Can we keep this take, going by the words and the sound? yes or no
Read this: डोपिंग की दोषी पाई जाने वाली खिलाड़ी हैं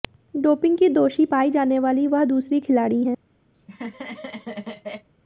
no